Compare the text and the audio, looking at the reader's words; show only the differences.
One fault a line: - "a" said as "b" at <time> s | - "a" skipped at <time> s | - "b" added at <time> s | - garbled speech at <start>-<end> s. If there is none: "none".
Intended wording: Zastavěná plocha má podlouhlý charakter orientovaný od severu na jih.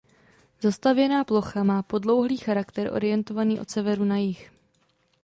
none